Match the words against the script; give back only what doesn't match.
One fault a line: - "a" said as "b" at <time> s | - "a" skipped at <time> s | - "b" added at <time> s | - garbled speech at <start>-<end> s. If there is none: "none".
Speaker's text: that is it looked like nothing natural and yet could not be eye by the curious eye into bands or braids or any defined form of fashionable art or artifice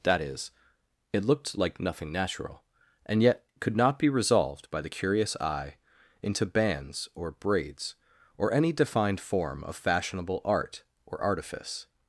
- "eye" said as "resolved" at 4.1 s